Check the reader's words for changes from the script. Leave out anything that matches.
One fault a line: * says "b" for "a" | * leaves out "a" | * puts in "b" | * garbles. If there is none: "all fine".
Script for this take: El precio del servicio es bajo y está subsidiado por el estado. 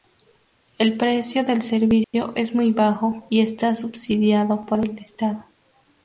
* puts in "muy"